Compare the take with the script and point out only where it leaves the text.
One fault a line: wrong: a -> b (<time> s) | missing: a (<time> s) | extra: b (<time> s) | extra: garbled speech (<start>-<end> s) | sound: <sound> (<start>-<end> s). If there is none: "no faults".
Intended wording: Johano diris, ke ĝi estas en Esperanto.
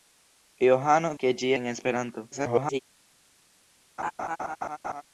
missing: diris (1.1 s)
missing: estas (1.5 s)
extra: garbled speech (2.3-2.8 s)
sound: laugh (4.0-5.0 s)